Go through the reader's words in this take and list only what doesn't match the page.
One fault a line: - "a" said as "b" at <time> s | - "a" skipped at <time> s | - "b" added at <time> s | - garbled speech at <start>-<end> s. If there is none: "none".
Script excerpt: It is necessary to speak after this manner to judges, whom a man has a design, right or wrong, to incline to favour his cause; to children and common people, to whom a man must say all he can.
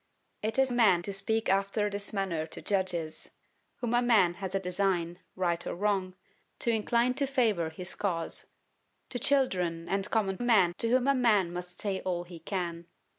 - "necessary" said as "man" at 0.7 s
- "people" said as "man" at 10.4 s